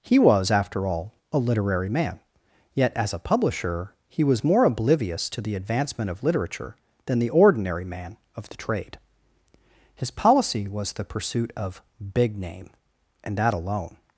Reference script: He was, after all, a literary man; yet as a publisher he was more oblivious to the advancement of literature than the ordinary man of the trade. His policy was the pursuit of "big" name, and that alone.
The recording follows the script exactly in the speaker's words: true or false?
true